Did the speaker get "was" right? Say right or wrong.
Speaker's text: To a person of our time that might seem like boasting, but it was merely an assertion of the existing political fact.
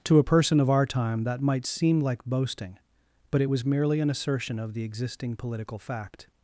right